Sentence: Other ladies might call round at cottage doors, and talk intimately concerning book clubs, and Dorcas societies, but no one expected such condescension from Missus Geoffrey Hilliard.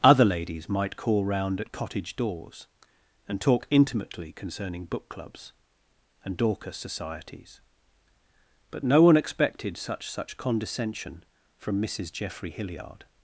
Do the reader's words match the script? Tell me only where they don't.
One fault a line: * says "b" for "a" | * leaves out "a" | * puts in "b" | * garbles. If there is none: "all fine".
* puts in "such"